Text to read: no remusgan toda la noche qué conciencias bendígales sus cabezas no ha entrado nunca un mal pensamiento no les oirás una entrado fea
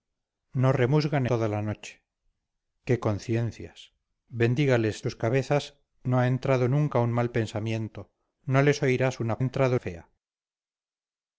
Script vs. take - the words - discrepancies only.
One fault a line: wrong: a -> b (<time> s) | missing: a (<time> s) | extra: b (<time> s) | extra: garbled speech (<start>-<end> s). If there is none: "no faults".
no faults